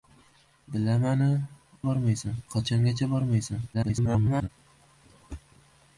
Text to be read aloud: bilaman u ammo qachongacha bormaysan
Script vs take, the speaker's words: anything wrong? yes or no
yes